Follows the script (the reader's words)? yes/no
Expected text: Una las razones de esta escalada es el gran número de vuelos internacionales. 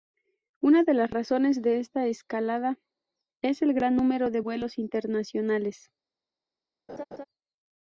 no